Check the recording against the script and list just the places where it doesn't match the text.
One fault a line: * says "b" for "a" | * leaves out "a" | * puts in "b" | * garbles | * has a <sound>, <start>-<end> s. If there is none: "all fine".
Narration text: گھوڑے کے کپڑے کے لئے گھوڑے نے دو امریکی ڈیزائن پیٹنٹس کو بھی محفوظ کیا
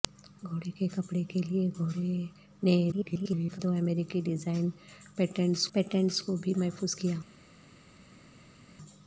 * garbles
* puts in "پیٹنٹس"